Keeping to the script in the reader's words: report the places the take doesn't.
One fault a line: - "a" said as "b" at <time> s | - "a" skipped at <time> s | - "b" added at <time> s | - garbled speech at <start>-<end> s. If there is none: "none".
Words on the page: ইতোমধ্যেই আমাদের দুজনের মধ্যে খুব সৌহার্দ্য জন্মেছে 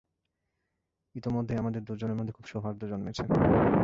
none